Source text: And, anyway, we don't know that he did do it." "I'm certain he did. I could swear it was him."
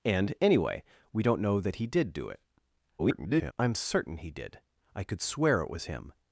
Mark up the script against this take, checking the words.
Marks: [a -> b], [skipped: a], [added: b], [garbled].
And, anyway, we don't know that he did do it." [garbled] "I'm certain he did. I could swear it was him."